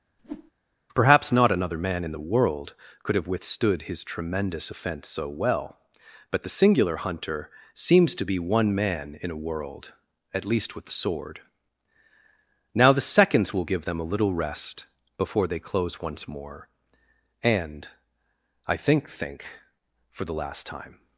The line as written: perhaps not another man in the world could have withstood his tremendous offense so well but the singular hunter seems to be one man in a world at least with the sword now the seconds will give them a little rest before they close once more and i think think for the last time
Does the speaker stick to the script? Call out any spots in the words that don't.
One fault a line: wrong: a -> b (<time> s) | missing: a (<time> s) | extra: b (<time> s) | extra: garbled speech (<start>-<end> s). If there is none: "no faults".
no faults